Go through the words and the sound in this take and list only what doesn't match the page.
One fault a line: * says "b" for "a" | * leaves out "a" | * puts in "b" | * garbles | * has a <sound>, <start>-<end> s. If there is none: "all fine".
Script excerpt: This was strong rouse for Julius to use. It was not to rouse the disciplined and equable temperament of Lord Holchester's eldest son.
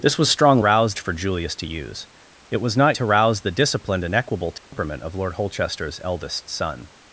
* has a dropout, 4.6-4.7 s